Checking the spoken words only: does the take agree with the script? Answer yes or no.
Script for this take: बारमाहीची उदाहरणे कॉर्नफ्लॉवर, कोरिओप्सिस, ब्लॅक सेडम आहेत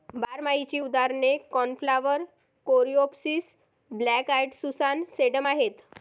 no